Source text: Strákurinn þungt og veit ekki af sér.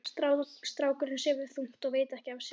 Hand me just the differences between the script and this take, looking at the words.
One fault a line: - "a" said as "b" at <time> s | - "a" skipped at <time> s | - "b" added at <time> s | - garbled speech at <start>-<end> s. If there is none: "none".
- "sefur" added at 1.2 s